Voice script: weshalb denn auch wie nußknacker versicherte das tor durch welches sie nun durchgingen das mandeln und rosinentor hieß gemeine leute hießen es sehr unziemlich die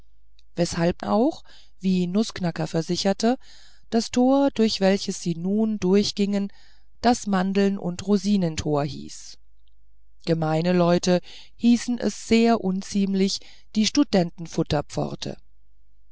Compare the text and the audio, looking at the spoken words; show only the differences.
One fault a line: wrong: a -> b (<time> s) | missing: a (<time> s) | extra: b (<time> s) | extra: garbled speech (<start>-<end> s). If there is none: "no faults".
missing: denn (1.0 s)